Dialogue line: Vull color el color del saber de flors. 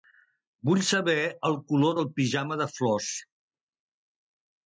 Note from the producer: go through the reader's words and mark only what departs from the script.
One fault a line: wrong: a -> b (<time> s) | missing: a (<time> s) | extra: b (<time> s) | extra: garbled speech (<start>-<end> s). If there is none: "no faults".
wrong: color -> saber (0.9 s)
wrong: saber -> pijama (2.2 s)